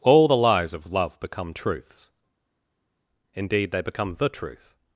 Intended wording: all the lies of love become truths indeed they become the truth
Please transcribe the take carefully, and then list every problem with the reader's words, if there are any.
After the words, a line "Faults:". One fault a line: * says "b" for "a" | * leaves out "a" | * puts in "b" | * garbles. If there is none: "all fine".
all the lies of love become truths indeed they become the truth
Faults:
all fine